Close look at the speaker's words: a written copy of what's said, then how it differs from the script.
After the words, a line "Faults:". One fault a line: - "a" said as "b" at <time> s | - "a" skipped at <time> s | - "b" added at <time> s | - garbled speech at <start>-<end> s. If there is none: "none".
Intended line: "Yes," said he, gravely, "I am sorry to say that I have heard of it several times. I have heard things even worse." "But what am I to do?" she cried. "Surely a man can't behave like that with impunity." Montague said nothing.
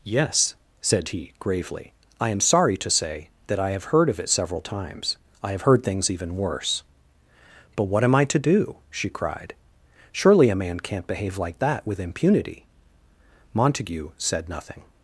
"Yes," said he, gravely, "I am sorry to say that I have heard of it several times. I have heard things even worse." "But what am I to do?" she cried. "Surely a man can't behave like that with impunity." Montague said nothing.
Faults:
none